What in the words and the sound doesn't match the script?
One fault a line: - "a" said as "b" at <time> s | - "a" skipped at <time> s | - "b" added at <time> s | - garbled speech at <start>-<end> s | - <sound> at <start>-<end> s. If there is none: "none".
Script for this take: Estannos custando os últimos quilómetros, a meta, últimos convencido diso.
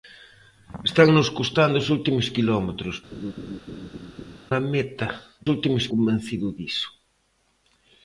- laugh at 3.1-4.4 s